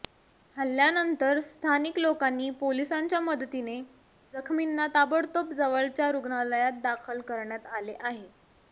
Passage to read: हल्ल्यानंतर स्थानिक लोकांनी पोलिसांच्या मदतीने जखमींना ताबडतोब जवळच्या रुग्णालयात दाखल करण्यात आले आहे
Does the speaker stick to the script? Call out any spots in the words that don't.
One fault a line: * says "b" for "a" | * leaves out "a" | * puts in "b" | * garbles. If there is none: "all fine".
all fine